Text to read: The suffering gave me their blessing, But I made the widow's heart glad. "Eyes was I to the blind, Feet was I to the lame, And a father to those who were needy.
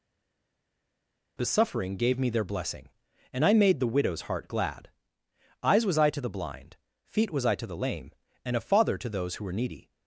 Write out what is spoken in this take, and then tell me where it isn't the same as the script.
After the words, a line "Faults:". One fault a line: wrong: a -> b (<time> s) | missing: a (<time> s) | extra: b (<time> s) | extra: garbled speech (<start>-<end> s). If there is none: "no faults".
The suffering gave me their blessing, And I made the widow's heart glad. "Eyes was I to the blind, Feet was I to the lame, And a father to those who were needy.
Faults:
wrong: But -> And (3.3 s)